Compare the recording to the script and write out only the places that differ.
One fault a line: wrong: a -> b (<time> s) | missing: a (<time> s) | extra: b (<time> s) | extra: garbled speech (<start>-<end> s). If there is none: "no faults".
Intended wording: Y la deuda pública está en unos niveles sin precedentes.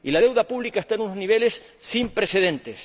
no faults